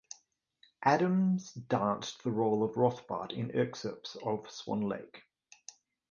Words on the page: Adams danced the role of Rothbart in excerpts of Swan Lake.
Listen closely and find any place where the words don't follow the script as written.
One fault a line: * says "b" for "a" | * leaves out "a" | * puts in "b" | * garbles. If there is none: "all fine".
all fine